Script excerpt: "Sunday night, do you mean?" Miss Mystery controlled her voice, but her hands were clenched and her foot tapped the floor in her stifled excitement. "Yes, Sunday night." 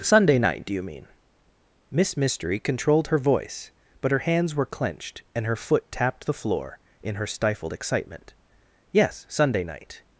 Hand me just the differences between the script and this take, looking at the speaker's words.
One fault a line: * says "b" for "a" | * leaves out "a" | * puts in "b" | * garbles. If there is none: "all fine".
all fine